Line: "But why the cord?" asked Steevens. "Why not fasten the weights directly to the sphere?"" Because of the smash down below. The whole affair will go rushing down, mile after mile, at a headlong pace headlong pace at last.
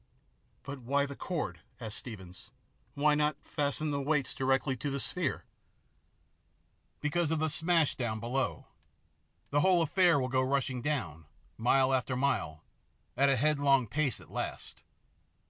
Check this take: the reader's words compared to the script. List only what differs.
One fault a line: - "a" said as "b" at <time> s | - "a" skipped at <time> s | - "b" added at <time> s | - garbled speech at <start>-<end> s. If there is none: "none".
- "headlong pace" skipped at 14.2 s